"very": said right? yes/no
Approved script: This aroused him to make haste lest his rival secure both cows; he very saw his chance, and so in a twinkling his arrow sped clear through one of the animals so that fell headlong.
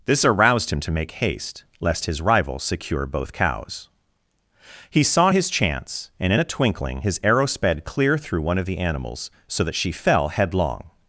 no